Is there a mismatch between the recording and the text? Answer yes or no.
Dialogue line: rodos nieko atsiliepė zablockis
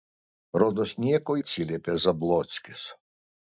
no